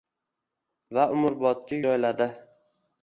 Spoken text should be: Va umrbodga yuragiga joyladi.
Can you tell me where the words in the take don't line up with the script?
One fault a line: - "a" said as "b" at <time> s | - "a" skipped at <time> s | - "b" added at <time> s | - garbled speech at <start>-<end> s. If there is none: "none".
- "yuragiga" skipped at 1.8 s